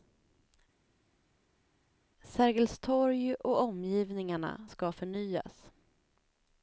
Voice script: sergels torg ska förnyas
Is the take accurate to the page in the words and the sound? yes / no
no